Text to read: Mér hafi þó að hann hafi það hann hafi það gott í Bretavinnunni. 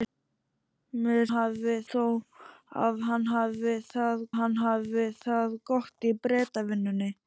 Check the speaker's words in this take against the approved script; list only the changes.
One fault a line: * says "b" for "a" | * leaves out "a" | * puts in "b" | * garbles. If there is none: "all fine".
all fine